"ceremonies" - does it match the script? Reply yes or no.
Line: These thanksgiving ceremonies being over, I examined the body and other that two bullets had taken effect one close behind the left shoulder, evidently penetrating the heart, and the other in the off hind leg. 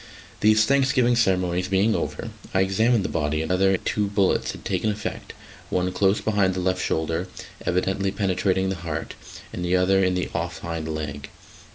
yes